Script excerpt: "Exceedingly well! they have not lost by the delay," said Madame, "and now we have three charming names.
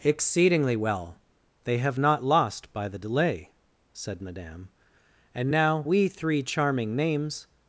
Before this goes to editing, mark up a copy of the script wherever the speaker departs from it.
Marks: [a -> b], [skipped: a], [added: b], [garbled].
"Exceedingly well! they have not lost by the delay," said Madame, "and now we [skipped: have] three charming names.